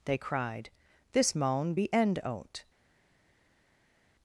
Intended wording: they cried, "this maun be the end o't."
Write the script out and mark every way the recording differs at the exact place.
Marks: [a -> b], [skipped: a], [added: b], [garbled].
they cried, "this maun be [skipped: the] end o't."